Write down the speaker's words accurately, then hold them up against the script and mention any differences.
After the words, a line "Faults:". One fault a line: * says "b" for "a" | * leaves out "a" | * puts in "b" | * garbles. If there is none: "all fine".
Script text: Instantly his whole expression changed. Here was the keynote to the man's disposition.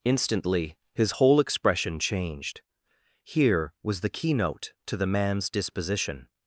Instantly his whole expression changed. Here was the keynote to the man's disposition.
Faults:
all fine